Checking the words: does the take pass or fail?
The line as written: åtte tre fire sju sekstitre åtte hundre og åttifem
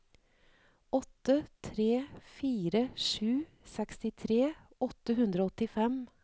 pass